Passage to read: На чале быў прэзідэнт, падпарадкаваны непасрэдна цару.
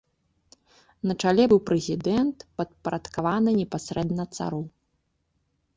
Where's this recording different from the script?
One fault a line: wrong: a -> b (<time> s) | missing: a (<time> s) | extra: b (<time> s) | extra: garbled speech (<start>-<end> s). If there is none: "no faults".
no faults